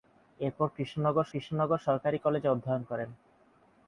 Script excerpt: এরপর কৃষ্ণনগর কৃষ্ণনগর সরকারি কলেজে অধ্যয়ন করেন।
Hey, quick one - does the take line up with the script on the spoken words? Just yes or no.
yes